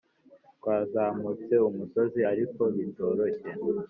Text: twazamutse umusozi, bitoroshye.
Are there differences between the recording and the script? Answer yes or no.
yes